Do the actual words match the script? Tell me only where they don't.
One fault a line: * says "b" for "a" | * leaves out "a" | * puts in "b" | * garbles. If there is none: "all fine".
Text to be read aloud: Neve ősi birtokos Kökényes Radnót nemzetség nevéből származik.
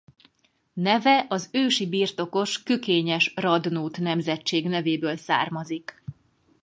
* puts in "az"